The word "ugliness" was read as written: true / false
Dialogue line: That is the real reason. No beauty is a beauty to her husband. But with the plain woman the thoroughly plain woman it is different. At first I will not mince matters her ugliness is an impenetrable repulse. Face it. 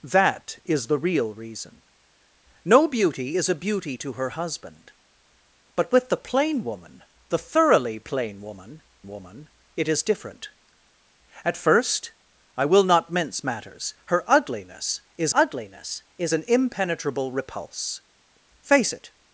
true